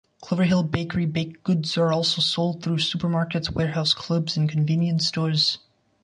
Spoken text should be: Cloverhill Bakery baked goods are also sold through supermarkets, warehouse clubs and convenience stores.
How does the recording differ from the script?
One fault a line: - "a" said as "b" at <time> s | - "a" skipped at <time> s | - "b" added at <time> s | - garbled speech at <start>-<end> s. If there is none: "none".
none